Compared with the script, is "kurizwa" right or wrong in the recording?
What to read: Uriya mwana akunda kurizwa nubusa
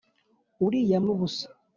wrong